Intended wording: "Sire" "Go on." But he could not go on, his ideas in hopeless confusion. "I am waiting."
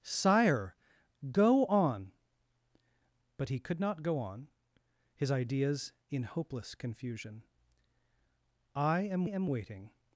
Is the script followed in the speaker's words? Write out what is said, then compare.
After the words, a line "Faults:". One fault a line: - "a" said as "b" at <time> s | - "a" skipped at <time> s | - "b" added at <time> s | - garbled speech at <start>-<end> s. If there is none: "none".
"Sire" "Go on." But he could not go on, his ideas in hopeless confusion. "I am am waiting."
Faults:
- "am" added at 9.2 s